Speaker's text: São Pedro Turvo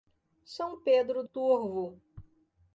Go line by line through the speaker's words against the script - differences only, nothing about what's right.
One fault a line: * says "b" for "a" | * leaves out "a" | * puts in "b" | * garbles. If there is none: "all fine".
all fine